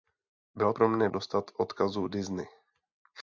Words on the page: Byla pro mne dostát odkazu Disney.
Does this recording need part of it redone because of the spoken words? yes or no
no